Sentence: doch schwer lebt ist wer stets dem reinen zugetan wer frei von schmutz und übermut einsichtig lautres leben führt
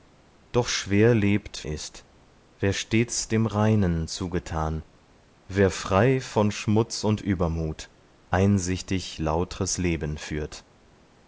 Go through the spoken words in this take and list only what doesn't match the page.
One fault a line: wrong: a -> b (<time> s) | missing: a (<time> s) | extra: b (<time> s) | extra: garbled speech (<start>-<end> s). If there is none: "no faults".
no faults